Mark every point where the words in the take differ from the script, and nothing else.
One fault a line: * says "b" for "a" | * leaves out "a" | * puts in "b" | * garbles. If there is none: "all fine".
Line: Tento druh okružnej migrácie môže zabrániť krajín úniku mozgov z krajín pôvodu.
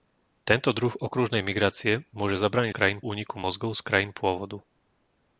all fine